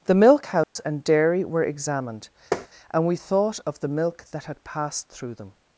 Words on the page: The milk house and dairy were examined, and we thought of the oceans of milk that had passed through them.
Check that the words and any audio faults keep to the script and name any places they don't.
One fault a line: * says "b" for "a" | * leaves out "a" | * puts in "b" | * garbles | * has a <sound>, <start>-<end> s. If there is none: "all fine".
* has a dropout, 0.6-0.8 s
* has a tap, 2.5-2.7 s
* leaves out "oceans of"